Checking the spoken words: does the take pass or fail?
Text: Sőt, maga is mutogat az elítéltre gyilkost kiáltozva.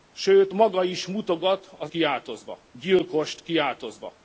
fail